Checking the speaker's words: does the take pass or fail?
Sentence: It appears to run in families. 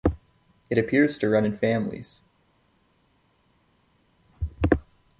pass